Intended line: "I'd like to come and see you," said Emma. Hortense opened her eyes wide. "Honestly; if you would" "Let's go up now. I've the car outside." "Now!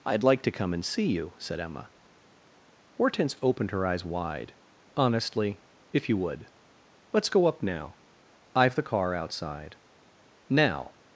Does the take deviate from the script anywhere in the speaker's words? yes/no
no